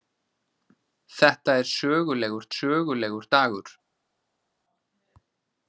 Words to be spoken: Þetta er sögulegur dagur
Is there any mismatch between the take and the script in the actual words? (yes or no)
yes